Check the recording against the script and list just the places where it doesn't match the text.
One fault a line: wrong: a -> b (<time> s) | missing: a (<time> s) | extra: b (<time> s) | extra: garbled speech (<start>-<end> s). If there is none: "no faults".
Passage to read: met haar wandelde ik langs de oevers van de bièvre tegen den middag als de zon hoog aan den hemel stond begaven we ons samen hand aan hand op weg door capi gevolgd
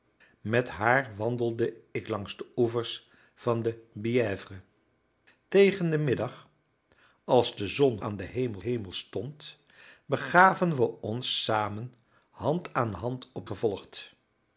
missing: hoog (8.0 s)
extra: hemel (8.6 s)
missing: weg door capi (13.5 s)